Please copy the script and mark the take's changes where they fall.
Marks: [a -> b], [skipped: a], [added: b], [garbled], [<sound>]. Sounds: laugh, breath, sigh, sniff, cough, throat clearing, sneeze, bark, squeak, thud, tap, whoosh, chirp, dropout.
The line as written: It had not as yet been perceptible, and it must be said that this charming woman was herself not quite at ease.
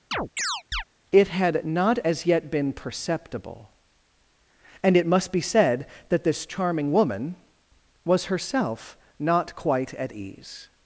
[chirp] It had not as yet been perceptible, and it must be said that this charming woman was herself not quite at ease.